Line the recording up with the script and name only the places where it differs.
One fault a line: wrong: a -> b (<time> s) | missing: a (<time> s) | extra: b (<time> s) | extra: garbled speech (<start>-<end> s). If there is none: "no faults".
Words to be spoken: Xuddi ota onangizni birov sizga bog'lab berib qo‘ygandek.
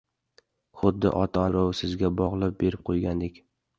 missing: onangizni (1.4 s)